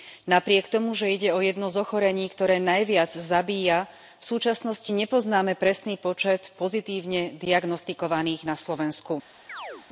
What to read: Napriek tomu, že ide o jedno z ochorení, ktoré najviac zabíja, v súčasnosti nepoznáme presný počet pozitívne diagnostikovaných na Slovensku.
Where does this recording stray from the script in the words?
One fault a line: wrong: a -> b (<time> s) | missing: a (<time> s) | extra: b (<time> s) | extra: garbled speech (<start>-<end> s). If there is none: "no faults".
no faults